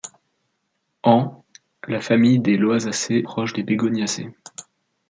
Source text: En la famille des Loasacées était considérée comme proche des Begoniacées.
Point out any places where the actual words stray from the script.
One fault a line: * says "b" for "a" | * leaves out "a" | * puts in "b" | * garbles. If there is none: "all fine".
* leaves out "était considérée comme"